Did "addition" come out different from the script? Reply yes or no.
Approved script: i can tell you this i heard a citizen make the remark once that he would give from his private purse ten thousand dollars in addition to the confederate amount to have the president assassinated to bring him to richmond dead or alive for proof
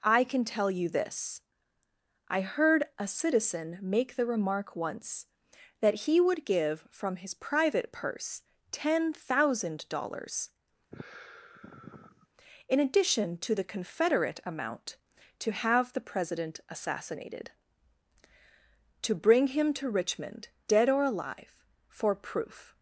no